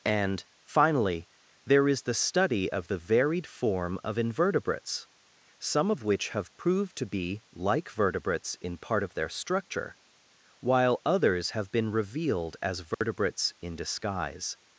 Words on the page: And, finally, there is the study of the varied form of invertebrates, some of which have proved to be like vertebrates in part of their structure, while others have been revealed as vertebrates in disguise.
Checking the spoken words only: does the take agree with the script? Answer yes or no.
yes